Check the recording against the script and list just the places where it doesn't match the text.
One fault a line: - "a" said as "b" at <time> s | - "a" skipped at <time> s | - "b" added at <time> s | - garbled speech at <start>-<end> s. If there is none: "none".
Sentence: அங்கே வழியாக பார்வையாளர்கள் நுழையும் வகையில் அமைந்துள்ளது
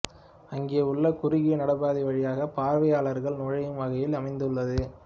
- "உள்ள குறுகிய நடைபாதை" added at 0.8 s